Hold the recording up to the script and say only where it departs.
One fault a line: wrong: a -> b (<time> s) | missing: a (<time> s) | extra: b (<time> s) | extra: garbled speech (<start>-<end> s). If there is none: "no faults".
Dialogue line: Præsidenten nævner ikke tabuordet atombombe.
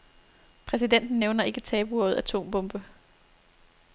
no faults